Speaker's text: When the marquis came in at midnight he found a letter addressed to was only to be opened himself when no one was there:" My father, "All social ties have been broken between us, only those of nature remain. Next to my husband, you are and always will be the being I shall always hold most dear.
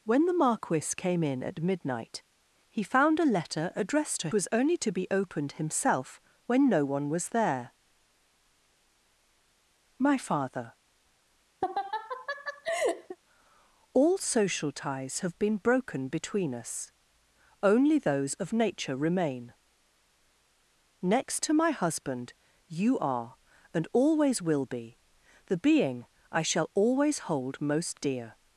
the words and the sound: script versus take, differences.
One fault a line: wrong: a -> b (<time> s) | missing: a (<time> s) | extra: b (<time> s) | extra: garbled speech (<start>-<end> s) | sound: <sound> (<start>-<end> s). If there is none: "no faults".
sound: laugh (11.6-13.2 s)